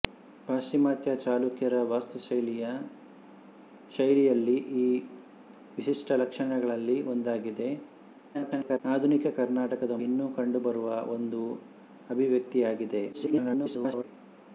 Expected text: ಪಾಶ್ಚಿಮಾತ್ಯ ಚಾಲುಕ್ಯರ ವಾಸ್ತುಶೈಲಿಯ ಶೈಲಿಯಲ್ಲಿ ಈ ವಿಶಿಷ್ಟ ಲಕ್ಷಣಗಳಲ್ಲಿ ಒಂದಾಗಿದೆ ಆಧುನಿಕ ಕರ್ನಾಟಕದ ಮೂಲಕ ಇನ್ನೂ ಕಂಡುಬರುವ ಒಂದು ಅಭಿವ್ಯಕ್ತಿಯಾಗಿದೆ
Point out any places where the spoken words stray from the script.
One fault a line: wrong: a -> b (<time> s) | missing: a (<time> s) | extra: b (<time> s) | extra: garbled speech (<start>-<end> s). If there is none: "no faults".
extra: garbled speech (8.3-8.8 s)
missing: ಮೂಲಕ (10.0 s)
extra: garbled speech (13.1-14.0 s)